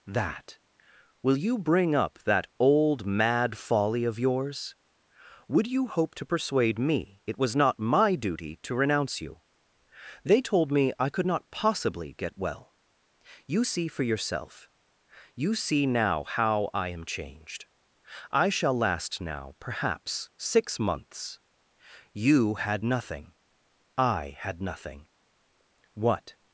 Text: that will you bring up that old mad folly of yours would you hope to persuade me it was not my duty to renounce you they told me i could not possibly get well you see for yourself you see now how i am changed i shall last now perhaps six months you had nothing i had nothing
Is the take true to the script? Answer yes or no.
no